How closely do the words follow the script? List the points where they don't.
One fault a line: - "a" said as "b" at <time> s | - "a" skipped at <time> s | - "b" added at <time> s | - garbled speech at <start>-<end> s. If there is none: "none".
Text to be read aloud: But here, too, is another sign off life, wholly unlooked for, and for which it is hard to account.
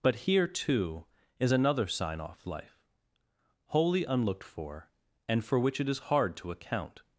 none